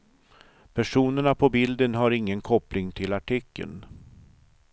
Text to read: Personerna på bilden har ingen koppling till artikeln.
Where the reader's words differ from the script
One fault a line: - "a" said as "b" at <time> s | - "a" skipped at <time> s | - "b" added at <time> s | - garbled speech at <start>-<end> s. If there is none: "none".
none